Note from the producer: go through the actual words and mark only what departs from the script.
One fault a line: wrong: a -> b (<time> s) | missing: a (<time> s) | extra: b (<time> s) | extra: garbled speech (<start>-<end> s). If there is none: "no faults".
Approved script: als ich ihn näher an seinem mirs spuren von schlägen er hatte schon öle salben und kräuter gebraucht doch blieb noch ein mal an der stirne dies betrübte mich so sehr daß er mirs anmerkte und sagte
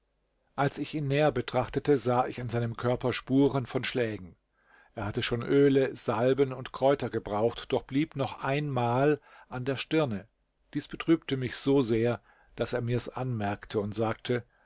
extra: betrachtete sah ich (1.3 s)
wrong: mirs -> körper (2.8 s)